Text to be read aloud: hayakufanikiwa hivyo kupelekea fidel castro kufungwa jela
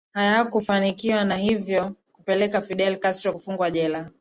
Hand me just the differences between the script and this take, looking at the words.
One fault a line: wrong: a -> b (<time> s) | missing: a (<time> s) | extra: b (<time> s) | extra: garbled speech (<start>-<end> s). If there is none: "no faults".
extra: na (1.2 s)